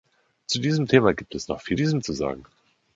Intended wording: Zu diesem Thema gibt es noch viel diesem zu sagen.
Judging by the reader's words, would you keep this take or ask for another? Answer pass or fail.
pass